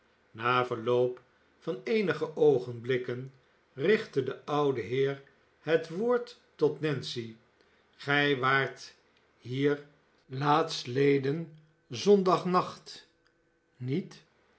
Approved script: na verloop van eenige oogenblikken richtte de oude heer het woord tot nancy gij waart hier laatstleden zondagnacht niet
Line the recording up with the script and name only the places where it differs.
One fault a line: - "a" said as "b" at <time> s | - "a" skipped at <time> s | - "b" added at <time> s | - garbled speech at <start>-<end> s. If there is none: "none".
none